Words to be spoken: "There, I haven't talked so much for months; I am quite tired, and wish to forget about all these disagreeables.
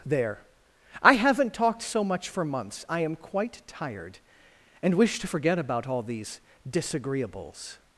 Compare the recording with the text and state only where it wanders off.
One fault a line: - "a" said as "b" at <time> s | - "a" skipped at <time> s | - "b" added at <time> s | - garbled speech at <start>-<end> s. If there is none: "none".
none